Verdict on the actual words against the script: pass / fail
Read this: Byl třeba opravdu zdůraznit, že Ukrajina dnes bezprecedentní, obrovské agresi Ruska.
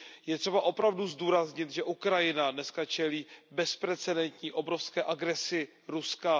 fail